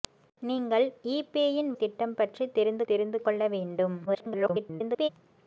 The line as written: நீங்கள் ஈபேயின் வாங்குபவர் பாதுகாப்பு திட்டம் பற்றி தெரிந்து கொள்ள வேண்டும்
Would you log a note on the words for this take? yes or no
yes